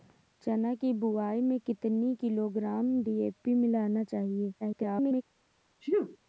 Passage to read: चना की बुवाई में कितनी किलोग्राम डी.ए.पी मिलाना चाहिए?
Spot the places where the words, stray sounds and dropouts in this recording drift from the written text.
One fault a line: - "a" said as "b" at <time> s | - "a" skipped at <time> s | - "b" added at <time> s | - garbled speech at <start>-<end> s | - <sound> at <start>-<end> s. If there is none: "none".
- garbled speech at 4.6-5.2 s
- sneeze at 5.8-6.2 s